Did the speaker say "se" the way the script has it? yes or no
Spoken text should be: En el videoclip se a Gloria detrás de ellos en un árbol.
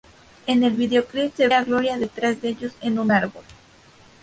yes